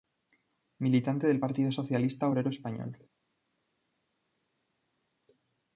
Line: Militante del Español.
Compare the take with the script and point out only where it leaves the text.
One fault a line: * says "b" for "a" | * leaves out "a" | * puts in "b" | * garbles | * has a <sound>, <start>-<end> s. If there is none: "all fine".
* puts in "Partido Socialista Obrero"